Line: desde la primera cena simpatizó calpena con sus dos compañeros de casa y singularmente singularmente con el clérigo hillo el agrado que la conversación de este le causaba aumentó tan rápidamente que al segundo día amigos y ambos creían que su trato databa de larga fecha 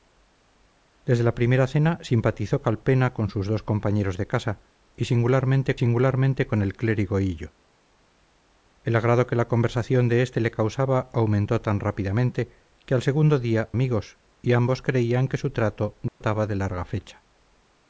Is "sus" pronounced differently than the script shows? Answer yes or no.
no